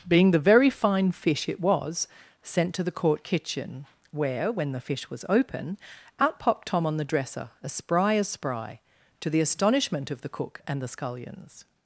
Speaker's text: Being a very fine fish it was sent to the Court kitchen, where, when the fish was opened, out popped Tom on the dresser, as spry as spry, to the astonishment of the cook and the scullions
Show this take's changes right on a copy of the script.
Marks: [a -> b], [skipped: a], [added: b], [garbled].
Being [a -> the] very fine fish it was sent to the Court kitchen, where, when the fish was [opened, -> open] out popped Tom on the dresser, as spry as spry, to the astonishment of the cook and the scullions